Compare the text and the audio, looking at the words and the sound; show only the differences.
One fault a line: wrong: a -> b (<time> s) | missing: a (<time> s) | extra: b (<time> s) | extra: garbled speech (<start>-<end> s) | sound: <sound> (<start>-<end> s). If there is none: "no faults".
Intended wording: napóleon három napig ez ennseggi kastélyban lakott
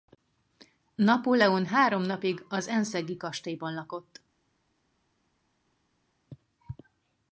wrong: ez -> az (2.5 s)